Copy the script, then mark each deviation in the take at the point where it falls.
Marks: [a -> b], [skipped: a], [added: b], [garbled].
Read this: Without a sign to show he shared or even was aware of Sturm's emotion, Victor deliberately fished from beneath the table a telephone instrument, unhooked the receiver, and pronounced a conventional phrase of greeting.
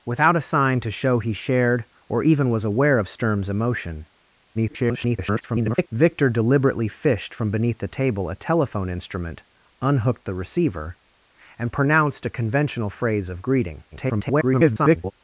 Without a sign to show he shared or even was aware of Sturm's emotion, [garbled] Victor deliberately fished from beneath the table a telephone instrument, unhooked the receiver, and pronounced a conventional phrase of greeting. [garbled]